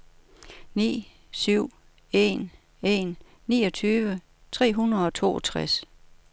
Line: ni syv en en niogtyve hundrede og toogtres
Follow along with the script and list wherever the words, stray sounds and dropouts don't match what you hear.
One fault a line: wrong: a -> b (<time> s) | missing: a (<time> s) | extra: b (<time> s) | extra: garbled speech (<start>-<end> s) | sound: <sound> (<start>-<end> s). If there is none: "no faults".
extra: tre (4.5 s)